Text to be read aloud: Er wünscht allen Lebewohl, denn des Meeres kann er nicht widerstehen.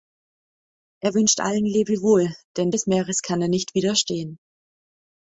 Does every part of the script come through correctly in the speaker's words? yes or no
yes